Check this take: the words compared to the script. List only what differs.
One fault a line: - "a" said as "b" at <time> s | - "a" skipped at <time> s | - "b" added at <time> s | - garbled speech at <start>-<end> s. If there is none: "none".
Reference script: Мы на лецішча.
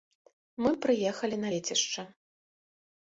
- "прыехалі" added at 0.9 s